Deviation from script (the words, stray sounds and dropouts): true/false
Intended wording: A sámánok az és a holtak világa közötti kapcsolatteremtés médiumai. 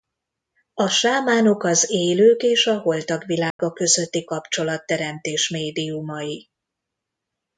true